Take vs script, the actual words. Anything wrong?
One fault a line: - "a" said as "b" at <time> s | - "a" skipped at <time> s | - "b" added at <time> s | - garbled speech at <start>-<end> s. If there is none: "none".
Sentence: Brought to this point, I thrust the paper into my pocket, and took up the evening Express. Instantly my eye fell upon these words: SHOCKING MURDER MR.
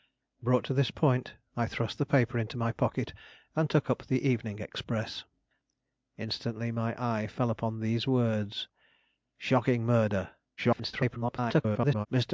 - garbled speech at 10.6-12.1 s